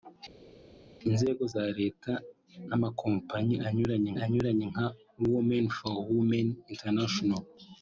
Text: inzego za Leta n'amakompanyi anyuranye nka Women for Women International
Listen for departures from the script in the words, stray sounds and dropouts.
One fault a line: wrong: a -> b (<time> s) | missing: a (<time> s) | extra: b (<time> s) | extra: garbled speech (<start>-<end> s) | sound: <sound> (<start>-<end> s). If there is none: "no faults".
extra: anyuranye (4.2 s)